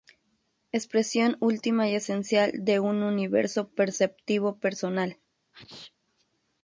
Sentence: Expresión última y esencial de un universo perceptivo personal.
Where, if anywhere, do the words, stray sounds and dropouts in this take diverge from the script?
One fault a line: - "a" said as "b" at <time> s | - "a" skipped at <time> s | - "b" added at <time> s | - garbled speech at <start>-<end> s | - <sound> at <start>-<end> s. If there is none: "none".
- sneeze at 5.5-5.9 s